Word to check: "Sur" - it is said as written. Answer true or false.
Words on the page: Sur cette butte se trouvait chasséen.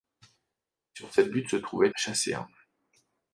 true